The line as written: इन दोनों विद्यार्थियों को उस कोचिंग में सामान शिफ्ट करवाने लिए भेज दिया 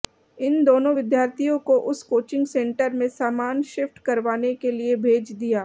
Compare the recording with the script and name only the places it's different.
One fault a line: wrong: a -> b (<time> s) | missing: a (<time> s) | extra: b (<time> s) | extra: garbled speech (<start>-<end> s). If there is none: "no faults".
extra: सेंटर (2.5 s)
extra: के (4.6 s)